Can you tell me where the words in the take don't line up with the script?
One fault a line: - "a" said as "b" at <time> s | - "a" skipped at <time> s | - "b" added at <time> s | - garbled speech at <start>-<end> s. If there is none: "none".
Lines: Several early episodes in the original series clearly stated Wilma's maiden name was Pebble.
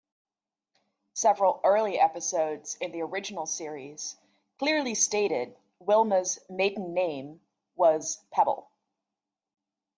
none